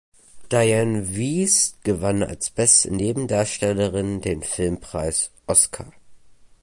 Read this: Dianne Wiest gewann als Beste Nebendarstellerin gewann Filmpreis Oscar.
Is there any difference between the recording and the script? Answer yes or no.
yes